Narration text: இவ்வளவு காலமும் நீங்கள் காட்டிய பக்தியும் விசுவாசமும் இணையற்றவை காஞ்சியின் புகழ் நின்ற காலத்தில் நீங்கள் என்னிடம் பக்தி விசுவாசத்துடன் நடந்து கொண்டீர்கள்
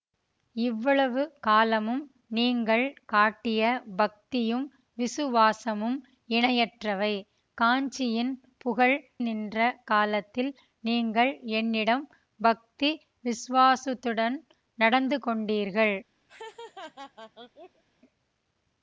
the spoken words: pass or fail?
pass